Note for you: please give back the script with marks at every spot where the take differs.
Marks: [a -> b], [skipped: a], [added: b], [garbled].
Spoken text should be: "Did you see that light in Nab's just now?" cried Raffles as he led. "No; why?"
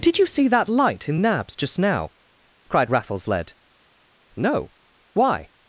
"Did you see that light in Nab's just now?" cried Raffles [skipped: as he] led. "No; why?"